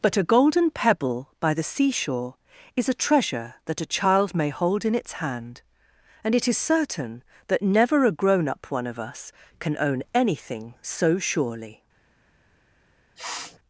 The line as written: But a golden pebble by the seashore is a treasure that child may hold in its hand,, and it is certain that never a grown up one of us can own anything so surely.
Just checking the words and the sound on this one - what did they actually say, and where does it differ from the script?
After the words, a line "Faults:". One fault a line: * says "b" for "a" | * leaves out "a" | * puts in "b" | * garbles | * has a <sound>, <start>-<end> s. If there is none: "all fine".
But a golden pebble by the seashore is a treasure that a child may hold in its hand,, and it is certain that never a grown up one of us can own anything so surely.
Faults:
* puts in "a"
* has a sniff, 13.1-13.6 s